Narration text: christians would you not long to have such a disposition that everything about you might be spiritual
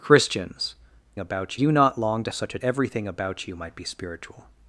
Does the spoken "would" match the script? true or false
false